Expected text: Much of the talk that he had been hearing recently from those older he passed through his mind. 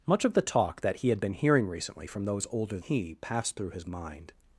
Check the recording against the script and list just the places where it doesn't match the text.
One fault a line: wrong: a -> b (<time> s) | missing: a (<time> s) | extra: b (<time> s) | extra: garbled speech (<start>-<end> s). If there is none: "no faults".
no faults